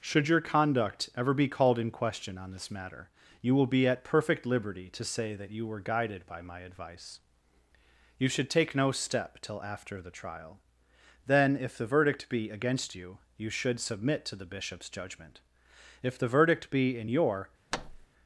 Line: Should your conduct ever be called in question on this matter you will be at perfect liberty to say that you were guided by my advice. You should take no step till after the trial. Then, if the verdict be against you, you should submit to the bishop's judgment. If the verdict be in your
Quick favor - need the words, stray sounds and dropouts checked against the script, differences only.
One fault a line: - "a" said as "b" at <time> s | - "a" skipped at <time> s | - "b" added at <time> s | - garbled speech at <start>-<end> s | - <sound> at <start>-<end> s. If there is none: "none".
- thud at 17.7-18.1 s